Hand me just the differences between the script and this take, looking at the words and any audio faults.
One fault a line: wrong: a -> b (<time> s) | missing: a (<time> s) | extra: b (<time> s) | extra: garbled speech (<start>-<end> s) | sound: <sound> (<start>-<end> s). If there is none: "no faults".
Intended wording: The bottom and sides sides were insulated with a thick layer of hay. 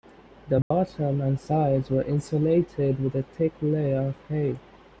sound: dropout (0.6-0.7 s)
missing: sides (1.9 s)